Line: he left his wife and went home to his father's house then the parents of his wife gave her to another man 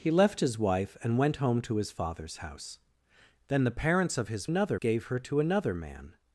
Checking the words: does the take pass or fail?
fail